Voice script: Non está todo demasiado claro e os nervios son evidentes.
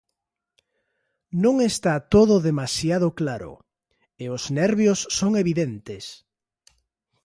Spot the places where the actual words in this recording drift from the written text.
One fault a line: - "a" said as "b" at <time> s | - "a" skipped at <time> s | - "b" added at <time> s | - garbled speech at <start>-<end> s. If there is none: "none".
none